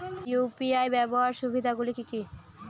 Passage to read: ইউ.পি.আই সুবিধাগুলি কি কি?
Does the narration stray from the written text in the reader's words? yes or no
yes